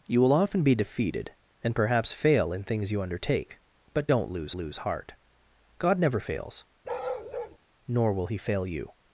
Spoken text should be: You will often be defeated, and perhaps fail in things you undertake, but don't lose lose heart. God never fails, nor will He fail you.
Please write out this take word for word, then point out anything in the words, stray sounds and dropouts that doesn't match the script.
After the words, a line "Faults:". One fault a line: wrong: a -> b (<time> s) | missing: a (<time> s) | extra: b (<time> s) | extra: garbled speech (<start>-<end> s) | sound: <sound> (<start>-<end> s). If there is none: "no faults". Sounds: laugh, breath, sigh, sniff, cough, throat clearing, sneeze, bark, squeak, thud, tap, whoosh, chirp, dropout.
You will often be defeated, and perhaps fail in things you undertake, but don't lose lose heart. God never fails, nor will He fail you.
Faults:
sound: bark (6.8-7.6 s)